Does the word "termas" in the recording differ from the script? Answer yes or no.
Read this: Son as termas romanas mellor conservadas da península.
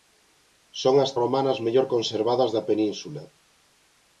yes